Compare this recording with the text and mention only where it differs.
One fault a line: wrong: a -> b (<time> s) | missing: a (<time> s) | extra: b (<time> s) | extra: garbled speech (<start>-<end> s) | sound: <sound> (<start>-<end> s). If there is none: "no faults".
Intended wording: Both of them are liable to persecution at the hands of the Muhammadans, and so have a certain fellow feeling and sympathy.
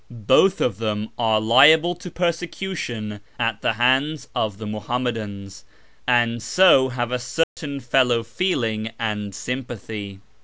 sound: dropout (7.4-7.6 s)